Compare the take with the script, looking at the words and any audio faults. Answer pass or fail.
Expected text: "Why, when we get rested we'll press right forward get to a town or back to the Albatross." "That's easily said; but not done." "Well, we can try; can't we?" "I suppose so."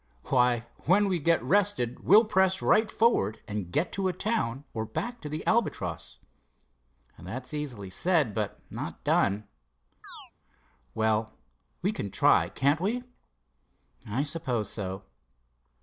fail